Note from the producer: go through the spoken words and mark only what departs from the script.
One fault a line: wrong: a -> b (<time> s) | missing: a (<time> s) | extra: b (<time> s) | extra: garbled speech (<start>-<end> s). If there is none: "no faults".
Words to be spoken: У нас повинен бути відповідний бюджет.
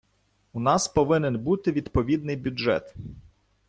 no faults